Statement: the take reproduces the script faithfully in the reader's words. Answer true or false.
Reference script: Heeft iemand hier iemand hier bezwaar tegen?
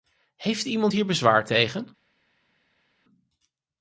false